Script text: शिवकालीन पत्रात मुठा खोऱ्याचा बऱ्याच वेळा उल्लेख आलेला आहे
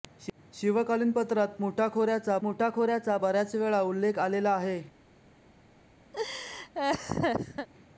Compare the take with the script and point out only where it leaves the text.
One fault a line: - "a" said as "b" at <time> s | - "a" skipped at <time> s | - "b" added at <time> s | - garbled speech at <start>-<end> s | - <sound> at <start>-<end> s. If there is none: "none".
- "मुठा खोऱ्याचा" added at 2.4 s
- laugh at 6.1-7.7 s